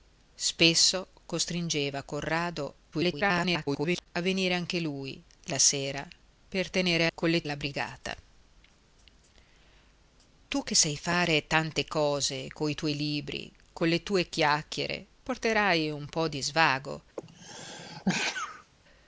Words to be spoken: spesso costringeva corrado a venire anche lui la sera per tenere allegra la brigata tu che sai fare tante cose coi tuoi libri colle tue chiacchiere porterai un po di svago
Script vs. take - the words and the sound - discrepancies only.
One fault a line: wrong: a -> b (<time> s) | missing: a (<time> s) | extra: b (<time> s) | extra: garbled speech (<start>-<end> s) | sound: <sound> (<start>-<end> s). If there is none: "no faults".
extra: garbled speech (2.9-4.1 s)
wrong: allegra -> colle (7.1 s)
sound: sneeze (17.2-18.7 s)